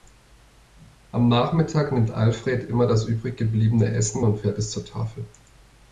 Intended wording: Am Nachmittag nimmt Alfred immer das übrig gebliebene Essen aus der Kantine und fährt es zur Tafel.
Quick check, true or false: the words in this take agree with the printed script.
false